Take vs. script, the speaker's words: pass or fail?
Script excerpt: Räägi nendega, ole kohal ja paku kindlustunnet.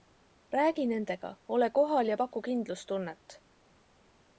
pass